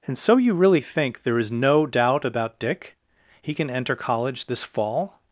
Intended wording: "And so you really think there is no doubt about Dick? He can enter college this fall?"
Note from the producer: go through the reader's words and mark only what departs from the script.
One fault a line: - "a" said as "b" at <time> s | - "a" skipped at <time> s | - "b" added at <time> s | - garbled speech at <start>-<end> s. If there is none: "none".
none